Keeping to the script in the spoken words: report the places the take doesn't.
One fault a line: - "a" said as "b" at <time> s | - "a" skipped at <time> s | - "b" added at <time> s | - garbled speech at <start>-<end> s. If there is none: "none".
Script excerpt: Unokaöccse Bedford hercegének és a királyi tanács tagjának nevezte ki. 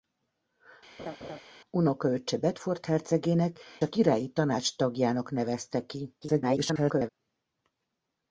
- "és" skipped at 3.6 s
- garbled speech at 6.2-7.1 s